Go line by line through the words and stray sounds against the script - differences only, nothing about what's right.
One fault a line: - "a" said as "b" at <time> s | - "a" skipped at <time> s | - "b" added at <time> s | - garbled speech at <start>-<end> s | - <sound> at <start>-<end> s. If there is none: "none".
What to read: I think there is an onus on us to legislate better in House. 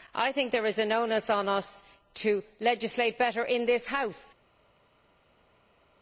- "this" added at 3.7 s